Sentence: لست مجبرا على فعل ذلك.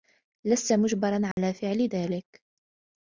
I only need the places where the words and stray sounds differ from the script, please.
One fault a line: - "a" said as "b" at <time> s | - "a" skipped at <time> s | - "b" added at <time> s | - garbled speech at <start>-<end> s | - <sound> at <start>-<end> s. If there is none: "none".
- dropout at 1.3-1.4 s